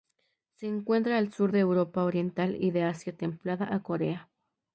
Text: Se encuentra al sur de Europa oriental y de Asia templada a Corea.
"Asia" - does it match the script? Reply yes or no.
yes